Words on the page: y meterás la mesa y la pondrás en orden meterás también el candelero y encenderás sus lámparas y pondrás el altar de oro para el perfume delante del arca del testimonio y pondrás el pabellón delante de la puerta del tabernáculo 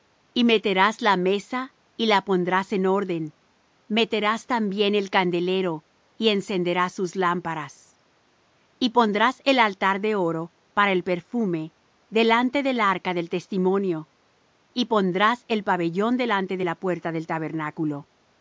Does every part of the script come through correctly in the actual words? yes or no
yes